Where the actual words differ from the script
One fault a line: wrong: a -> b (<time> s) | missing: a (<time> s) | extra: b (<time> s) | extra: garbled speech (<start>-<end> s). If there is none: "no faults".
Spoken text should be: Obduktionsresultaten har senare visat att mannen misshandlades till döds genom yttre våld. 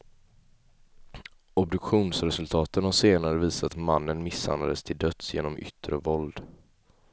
missing: att (3.8 s)